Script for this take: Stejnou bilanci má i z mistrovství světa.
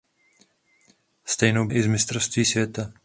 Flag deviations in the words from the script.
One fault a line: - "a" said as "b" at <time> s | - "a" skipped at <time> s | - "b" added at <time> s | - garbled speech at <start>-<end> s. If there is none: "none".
- "bilanci má" skipped at 1.7 s